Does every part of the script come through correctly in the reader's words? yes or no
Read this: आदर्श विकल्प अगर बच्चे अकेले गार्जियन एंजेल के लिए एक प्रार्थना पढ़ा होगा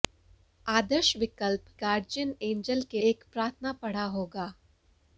no